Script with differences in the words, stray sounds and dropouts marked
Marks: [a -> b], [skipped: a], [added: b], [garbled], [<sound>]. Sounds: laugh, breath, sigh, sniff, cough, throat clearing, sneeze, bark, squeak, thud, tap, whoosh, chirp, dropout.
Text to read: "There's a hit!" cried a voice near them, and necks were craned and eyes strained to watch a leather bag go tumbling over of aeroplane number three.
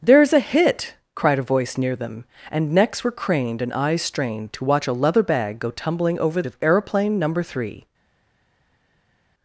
"There's a hit!" cried a voice near them, and necks were craned and eyes strained to watch a leather bag go tumbling over of aeroplane number three.